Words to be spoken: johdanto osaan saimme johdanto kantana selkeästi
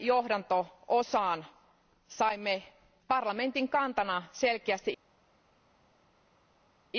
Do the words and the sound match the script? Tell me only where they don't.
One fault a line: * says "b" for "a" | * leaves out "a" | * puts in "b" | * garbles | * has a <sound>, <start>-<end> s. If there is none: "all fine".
* says "parlamentin" for "johdanto"